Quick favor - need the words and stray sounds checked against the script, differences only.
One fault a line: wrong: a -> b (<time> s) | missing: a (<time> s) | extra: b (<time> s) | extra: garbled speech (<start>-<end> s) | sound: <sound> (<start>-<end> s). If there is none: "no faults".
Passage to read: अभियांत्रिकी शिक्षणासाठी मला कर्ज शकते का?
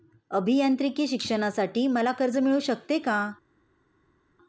extra: मिळू (2.4 s)